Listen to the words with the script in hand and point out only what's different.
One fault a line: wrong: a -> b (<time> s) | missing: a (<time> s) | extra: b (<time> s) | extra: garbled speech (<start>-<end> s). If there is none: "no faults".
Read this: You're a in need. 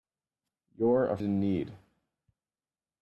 no faults